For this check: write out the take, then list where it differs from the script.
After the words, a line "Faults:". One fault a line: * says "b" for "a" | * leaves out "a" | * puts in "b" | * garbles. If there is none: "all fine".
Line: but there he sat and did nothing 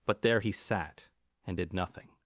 but there he sat and did nothing
Faults:
all fine